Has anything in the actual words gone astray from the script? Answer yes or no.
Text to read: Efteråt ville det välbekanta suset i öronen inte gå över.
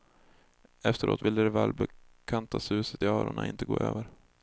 no